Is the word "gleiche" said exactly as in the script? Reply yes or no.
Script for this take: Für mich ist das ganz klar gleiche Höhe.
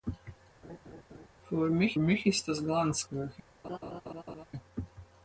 no